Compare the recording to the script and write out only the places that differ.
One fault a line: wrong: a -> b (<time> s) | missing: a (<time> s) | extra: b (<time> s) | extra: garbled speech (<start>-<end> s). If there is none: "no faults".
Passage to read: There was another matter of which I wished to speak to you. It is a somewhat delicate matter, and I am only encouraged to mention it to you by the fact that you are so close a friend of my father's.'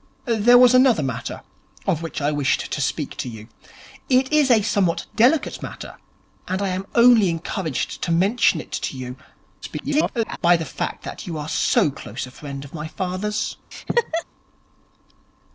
extra: garbled speech (9.6-10.4 s)